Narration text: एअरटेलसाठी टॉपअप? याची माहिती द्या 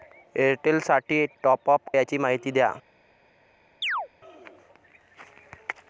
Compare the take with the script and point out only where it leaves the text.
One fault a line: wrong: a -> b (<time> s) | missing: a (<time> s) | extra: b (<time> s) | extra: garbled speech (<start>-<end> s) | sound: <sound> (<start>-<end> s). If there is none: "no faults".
sound: chirp (3.8-4.1 s)